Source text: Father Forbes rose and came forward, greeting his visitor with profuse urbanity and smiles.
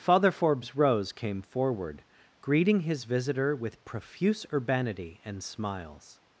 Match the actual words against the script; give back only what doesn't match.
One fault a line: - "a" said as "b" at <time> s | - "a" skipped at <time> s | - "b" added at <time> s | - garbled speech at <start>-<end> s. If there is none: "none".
- "and" skipped at 1.1 s